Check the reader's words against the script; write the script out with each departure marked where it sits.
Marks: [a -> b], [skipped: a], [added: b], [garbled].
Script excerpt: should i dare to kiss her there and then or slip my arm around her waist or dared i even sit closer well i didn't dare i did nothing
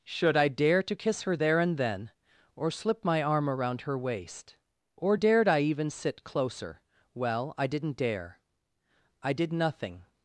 should i dare to kiss her there and then or slip my arm around her waist or dared i even sit closer well i didn't dare i did nothing